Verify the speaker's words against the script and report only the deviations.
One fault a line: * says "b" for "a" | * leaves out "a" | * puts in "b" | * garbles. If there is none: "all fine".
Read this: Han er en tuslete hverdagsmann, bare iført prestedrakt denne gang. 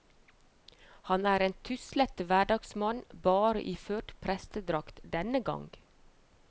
all fine